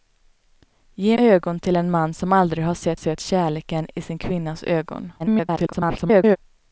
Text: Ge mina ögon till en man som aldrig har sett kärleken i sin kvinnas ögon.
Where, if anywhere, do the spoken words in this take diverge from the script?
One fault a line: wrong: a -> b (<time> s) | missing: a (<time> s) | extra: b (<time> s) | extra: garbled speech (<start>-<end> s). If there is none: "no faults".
missing: mina (1.2 s)
extra: sett (2.9 s)
extra: garbled speech (5.2-6.4 s)